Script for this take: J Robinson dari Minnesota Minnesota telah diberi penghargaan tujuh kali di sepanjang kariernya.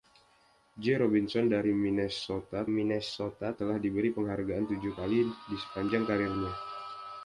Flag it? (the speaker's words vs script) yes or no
no